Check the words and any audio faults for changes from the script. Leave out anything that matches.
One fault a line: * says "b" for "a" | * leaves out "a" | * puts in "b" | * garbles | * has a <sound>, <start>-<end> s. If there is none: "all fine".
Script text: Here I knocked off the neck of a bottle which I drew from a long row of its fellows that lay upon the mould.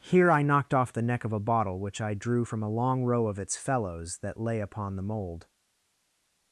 all fine